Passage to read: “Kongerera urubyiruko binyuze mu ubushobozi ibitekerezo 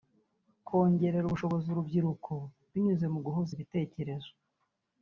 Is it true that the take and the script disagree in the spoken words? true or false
true